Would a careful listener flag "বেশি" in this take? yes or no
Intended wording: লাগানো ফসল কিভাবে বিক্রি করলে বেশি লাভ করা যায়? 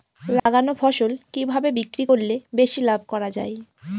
no